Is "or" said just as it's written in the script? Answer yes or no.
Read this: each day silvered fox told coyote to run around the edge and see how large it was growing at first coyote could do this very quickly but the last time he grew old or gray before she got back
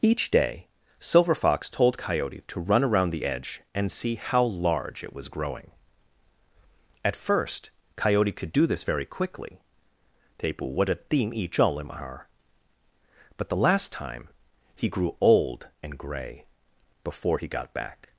no